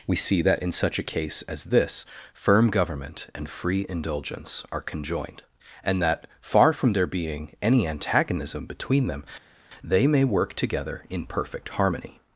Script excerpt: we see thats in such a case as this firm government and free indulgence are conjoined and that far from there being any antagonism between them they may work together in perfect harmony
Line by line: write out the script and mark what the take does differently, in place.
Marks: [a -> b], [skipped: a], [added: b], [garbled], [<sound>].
we see [thats -> that] in such a case as this firm government and free indulgence are conjoined and that far from there being any antagonism between them they may work together in perfect harmony